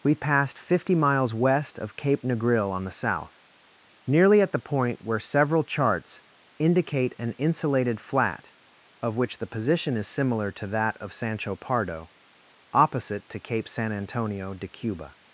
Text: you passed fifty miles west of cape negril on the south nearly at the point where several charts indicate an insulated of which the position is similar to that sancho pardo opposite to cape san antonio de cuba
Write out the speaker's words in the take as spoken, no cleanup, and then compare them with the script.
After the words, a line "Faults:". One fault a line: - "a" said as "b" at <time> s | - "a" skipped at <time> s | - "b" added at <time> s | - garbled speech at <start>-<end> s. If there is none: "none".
we passed fifty miles west of cape negril on the south nearly at the point where several charts indicate an insulated flat of which the position is similar to that of sancho pardo opposite to cape san antonio de cuba
Faults:
- "you" said as "we" at 0.0 s
- "flat" added at 8.0 s
- "of" added at 11.0 s